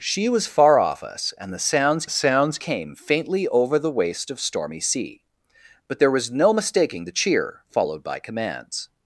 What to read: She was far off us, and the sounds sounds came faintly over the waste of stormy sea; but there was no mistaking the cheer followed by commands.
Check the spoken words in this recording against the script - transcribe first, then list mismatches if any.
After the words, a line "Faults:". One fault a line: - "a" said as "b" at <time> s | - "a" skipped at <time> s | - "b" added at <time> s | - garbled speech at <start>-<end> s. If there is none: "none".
She was far off us, and the sounds sounds came faintly over the waste of stormy sea; but there was no mistaking the cheer followed by commands.
Faults:
none